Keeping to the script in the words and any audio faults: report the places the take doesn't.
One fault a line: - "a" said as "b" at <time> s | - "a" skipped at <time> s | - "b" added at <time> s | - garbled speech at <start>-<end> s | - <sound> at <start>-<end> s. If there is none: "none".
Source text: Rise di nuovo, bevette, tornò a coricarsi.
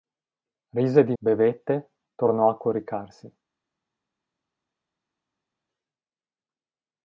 - "nuovo" skipped at 1.1 s